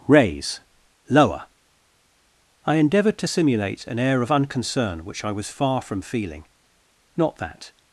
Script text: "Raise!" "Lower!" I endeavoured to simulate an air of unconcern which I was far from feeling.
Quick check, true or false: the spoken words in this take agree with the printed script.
false